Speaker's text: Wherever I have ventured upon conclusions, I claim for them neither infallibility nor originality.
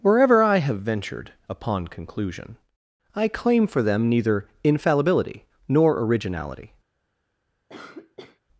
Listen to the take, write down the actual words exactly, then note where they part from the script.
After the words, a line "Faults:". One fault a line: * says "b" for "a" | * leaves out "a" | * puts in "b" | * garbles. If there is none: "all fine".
Wherever I have ventured upon conclusion, I claim for them neither infallibility nor originality.
Faults:
* says "conclusion" for "conclusions"